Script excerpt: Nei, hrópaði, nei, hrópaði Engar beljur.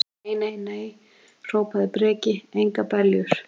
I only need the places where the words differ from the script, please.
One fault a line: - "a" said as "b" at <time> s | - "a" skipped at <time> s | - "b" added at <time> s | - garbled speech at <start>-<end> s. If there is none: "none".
- "hrópaði" said as "nei" at 0.4 s
- "Breki" added at 2.0 s